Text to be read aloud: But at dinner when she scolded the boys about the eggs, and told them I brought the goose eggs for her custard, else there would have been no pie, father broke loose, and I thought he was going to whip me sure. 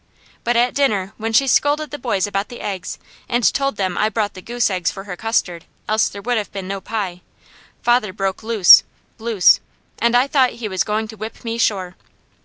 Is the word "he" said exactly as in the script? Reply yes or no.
yes